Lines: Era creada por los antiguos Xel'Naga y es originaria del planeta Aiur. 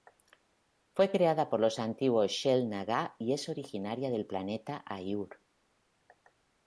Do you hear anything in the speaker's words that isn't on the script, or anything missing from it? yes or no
yes